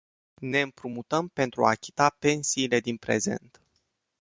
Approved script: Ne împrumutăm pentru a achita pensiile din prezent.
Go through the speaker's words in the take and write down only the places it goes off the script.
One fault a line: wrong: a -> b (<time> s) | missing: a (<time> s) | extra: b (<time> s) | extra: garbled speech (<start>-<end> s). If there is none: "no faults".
no faults